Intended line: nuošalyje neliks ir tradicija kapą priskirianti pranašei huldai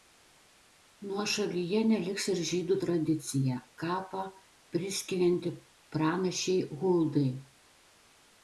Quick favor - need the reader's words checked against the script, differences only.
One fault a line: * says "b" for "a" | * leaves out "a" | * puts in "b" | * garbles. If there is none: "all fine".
* puts in "žydų"